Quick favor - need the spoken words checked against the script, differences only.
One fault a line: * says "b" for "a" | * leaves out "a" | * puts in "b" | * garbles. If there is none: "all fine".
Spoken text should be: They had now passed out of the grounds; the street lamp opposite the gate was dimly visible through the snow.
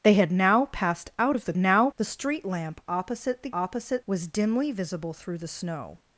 * says "now" for "grounds"
* says "opposite" for "gate"